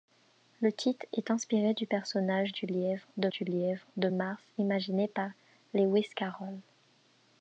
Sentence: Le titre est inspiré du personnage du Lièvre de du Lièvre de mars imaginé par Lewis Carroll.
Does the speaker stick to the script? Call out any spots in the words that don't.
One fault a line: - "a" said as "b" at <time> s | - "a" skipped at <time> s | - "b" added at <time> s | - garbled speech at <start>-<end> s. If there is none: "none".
none